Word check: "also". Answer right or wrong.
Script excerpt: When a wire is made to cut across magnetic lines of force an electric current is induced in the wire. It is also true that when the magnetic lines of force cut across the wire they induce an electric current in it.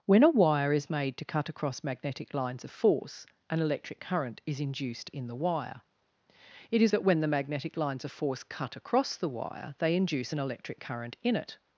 wrong